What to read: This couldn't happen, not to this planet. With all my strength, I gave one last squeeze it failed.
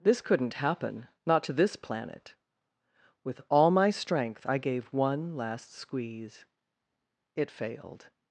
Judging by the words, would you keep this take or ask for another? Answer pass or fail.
pass